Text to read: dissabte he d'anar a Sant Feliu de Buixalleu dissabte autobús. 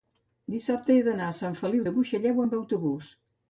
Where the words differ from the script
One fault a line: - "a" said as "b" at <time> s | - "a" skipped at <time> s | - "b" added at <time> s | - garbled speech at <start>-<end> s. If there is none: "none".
- "dissabte" said as "amb" at 2.4 s